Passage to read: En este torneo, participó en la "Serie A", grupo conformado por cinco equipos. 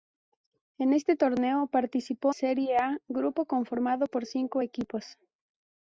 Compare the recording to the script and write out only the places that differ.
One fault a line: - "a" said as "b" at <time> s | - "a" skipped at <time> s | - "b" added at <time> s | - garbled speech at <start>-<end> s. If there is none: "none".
- "en la" skipped at 2.4 s